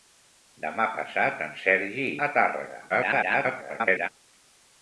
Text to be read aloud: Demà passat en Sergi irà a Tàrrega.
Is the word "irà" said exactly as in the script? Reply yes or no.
no